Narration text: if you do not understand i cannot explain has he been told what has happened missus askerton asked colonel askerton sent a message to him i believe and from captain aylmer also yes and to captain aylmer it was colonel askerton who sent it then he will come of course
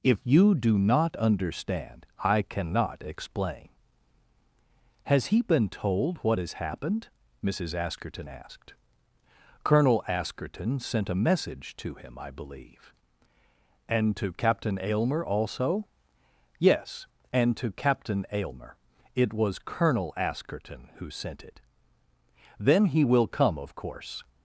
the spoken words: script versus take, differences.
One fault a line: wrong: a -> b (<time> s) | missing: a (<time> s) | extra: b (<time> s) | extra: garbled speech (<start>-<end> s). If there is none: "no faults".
wrong: from -> to (14.2 s)